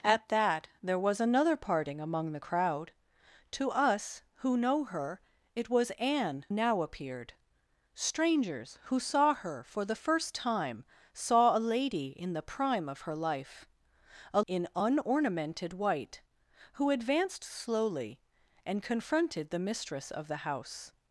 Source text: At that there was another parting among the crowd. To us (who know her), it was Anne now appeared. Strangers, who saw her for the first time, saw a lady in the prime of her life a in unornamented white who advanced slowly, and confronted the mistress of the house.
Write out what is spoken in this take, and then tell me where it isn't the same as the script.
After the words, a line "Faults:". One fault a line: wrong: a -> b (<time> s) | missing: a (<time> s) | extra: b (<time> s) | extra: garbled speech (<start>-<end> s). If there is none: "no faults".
At that there was another parting among the crowd. To us (who know her), it was Anne now appeared. Strangers, who saw her for the first time, saw a lady in the prime of her life a in unornamented white who advanced slowly, and confronted the mistress of the house.
Faults:
no faults